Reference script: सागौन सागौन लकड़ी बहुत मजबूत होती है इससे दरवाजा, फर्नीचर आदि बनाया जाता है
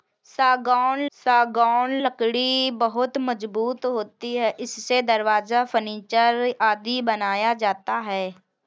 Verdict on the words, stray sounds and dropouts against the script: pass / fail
pass